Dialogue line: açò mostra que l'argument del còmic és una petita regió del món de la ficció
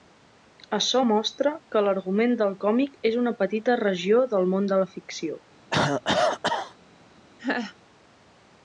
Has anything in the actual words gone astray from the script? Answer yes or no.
no